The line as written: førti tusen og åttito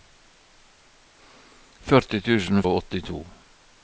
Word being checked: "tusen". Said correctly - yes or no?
yes